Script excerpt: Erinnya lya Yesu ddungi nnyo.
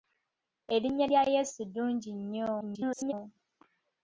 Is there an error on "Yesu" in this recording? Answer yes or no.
no